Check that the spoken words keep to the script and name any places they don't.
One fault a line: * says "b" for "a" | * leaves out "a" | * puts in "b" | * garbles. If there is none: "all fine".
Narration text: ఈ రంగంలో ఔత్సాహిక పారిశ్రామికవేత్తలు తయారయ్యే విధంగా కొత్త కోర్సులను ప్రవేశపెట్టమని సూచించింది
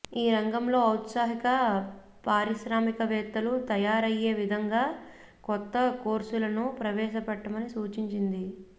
all fine